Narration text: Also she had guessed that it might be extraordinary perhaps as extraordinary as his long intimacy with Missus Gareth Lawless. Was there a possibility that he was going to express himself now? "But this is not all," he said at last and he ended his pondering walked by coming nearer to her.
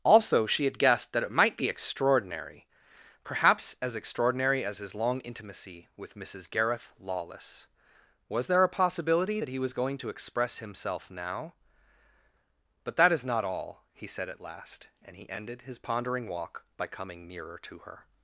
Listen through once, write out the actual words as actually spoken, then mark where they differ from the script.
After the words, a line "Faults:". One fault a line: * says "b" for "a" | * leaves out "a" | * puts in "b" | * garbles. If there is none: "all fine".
Also she had guessed that it might be extraordinary perhaps as extraordinary as his long intimacy with Missus Gareth Lawless. Was there a possibility that he was going to express himself now? "But that is not all," he said at last and he ended his pondering walk by coming nearer to her.
Faults:
* says "that" for "this"
* says "walk" for "walked"